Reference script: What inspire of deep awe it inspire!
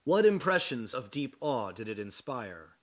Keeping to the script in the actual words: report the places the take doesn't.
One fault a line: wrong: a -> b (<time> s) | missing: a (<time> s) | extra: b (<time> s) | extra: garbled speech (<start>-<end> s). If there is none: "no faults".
wrong: inspire -> impressions (0.2 s)
extra: did (1.7 s)